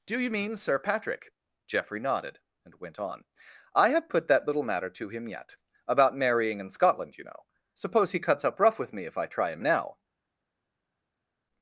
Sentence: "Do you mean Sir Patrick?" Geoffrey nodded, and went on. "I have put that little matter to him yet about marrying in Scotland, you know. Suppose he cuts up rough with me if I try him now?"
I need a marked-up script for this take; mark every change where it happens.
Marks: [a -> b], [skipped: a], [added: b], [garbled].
"Do you mean Sir Patrick?" Geoffrey nodded, and went on. "I have put that little matter to him yet about marrying in Scotland, you know. Suppose he cuts up rough with me if I try him now?"